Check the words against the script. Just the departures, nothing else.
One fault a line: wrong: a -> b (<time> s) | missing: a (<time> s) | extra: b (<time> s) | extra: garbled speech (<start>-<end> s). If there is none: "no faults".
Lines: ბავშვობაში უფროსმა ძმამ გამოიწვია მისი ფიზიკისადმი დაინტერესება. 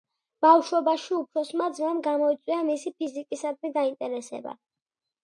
no faults